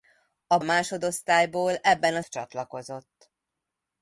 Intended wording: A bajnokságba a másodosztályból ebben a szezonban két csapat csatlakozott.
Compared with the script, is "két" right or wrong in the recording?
wrong